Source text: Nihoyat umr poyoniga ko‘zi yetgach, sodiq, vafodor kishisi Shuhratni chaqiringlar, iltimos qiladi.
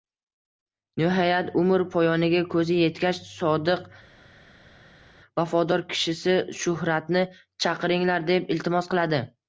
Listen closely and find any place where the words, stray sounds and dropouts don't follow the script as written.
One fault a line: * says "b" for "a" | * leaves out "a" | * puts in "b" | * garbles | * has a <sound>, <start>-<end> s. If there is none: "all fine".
* puts in "deb"